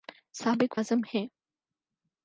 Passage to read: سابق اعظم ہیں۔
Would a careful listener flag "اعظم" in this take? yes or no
no